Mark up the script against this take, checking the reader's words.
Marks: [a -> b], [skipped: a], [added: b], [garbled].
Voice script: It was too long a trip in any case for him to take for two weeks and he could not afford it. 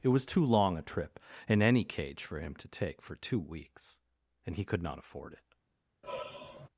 It was too long a trip in any [case -> cage] for him to take for two weeks and he could not afford it.